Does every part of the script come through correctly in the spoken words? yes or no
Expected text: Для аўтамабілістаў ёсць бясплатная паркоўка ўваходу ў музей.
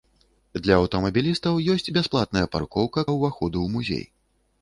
yes